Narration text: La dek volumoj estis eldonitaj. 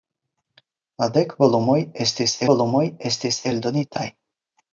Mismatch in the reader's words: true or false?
true